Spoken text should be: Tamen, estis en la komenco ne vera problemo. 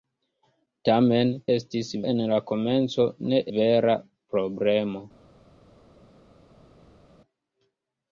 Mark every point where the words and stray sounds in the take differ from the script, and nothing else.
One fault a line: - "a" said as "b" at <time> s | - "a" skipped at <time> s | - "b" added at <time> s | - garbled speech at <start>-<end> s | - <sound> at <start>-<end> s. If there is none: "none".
none